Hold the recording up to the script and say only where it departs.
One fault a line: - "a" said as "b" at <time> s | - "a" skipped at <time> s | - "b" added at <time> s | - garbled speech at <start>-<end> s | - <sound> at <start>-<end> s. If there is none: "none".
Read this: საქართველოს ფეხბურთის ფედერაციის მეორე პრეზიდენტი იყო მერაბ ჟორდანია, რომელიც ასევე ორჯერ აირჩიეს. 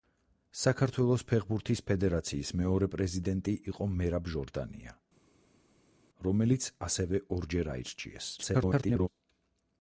- garbled speech at 8.4-9.1 s